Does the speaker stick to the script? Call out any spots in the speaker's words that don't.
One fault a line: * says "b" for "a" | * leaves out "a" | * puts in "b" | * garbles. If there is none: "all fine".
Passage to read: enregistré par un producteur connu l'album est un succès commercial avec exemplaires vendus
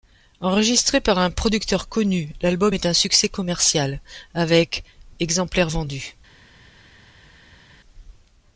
all fine